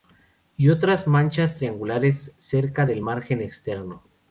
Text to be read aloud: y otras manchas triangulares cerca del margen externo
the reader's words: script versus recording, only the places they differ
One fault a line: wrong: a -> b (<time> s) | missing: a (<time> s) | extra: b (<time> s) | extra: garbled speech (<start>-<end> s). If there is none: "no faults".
no faults